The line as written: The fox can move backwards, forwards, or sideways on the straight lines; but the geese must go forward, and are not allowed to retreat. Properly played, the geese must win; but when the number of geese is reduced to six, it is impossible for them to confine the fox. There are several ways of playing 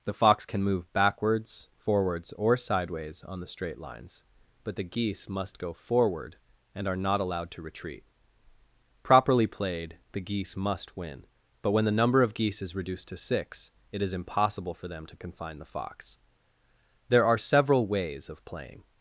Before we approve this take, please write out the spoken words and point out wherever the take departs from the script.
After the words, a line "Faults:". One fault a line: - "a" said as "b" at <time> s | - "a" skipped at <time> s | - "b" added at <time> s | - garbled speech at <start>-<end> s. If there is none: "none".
The fox can move backwards, forwards, or sideways on the straight lines; but the geese must go forward, and are not allowed to retreat. Properly played, the geese must win; but when the number of geese is reduced to six, it is impossible for them to confine the fox. There are several ways of playing
Faults:
none